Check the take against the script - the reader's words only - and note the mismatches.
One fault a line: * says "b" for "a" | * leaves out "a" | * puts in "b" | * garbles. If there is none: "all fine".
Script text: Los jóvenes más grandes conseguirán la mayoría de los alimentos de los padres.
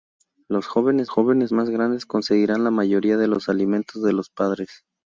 * puts in "jóvenes"